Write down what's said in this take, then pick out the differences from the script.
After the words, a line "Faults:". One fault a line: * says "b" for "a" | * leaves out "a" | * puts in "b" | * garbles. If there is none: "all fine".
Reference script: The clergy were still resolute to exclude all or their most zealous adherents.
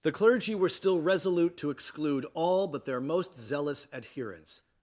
The clergy were still resolute to exclude all but their most zealous adherents.
Faults:
* says "but" for "or"